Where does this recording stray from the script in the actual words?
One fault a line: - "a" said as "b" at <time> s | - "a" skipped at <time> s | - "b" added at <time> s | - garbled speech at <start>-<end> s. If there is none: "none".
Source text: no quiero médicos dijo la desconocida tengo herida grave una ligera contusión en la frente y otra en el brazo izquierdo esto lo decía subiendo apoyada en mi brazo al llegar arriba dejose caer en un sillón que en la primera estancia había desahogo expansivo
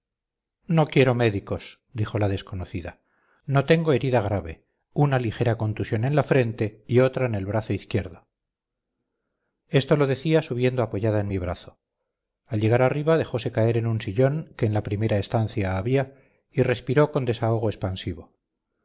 - "no" added at 3.5 s
- "y respiró con" added at 16.5 s